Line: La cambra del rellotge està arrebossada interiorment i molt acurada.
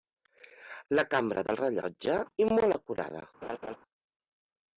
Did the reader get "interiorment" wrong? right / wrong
wrong